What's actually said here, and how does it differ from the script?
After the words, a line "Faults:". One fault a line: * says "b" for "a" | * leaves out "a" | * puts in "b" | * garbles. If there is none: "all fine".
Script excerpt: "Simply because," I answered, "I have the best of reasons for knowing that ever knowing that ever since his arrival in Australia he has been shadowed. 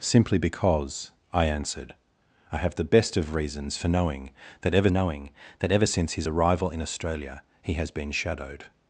"Simply because," I answered, "I have the best of reasons for knowing that ever knowing that ever since his arrival in Australia he has been shadowed.
Faults:
all fine